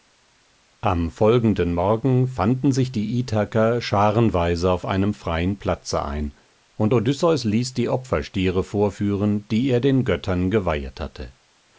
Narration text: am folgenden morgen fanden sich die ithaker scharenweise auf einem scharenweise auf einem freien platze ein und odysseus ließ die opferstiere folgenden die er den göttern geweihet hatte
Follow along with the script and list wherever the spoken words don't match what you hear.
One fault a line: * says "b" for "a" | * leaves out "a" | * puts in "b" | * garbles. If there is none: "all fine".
* leaves out "scharenweise auf einem"
* says "vorführen" for "folgenden"